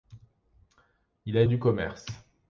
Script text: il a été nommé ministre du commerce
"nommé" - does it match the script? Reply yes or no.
no